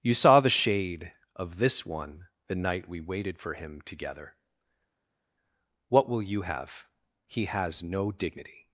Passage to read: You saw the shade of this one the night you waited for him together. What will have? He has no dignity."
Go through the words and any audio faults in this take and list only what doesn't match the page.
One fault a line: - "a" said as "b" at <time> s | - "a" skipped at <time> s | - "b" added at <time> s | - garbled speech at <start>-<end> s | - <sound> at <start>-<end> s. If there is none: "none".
- "you" said as "we" at 2.9 s
- "you" added at 6.2 s